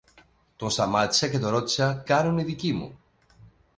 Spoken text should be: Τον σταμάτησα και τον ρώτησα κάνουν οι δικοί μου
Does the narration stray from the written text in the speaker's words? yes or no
no